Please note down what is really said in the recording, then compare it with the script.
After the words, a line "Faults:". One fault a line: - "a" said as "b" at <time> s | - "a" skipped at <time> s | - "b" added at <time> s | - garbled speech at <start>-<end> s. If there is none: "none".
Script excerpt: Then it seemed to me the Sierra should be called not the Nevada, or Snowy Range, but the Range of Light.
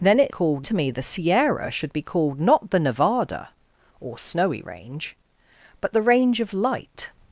Then it called to me the Sierra should be called not the Nevada, or Snowy Range, but the Range of Light.
Faults:
- "seemed" said as "called" at 0.3 s